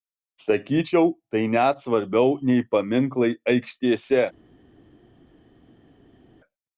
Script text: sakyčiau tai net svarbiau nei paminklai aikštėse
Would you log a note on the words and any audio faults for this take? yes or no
no